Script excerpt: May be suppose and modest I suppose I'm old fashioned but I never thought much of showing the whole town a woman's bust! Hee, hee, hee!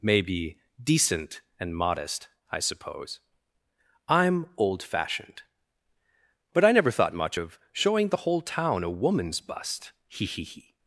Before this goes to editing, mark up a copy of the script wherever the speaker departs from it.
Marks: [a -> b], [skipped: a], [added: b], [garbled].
May be [suppose -> decent] and modest I suppose I'm old fashioned but I never thought much of showing the whole town a woman's bust! Hee, hee, hee!